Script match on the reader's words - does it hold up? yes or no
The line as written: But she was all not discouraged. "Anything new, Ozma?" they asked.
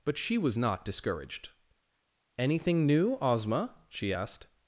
no